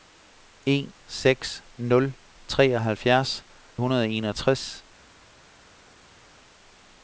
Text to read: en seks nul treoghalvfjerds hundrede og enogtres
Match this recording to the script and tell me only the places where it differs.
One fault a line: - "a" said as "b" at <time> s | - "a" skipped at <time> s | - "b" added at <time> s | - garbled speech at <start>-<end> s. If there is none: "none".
none